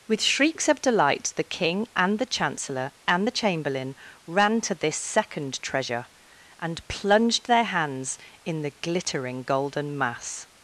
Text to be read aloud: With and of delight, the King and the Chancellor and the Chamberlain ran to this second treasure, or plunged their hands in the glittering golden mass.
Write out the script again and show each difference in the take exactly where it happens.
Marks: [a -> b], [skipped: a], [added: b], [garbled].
With [and -> shrieks] of delight, the King and the Chancellor and the Chamberlain ran to this second treasure, [or -> and] plunged their hands in the glittering golden mass.